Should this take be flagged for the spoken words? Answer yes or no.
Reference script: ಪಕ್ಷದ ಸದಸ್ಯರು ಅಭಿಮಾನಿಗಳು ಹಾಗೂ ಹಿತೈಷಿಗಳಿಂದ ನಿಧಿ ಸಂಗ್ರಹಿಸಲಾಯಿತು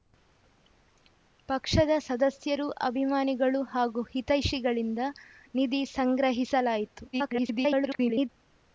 yes